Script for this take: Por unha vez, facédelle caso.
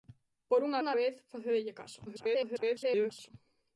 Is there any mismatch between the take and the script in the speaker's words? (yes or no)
yes